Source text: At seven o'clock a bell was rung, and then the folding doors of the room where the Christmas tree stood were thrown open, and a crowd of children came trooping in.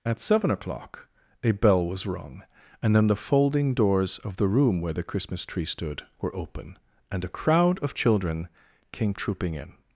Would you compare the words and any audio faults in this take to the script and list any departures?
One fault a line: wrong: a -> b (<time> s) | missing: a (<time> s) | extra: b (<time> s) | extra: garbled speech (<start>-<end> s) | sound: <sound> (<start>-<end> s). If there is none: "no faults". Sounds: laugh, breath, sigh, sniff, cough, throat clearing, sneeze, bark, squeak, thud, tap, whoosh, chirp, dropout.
missing: thrown (6.3 s)